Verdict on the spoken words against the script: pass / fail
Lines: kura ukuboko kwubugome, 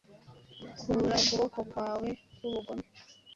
fail